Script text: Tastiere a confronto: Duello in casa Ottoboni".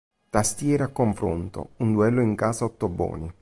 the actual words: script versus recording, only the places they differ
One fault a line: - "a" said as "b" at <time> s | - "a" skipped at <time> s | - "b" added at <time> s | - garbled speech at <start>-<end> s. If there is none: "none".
- "Un" added at 1.8 s